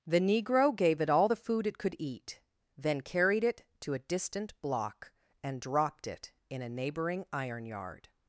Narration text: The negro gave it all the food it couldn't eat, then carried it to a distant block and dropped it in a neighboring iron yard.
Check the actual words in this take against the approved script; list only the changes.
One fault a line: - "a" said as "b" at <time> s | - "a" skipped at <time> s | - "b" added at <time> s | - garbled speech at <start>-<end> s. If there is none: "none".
- "couldn't" said as "could" at 1.8 s